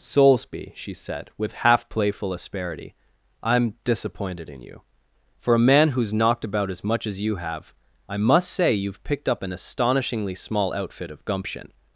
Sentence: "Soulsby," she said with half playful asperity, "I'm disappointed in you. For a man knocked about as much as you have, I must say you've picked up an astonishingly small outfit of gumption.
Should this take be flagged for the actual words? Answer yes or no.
yes